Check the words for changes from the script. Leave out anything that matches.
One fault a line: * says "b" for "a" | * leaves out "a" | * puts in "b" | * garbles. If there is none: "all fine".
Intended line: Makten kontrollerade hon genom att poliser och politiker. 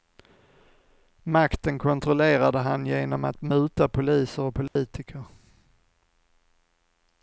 * says "han" for "hon"
* puts in "muta"